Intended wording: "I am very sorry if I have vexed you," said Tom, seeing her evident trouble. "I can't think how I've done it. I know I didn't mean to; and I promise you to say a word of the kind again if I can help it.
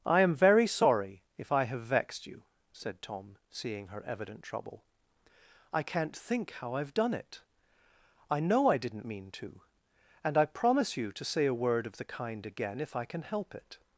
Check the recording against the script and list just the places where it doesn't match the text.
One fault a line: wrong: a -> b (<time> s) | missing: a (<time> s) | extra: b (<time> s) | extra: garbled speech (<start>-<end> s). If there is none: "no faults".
no faults